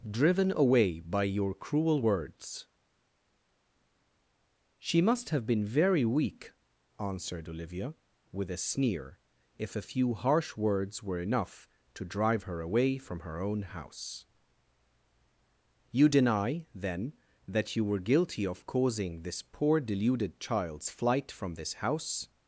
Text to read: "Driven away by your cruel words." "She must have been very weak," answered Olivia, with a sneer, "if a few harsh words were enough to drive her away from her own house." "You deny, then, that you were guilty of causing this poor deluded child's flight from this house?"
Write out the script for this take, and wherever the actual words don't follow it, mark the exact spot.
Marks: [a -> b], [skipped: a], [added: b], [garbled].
"Driven away by your cruel words." "She must have been very weak," answered Olivia, with a sneer, "if a few harsh words were enough to drive her away from her own house." "You deny, then, that you were guilty of causing this poor deluded child's flight from this house?"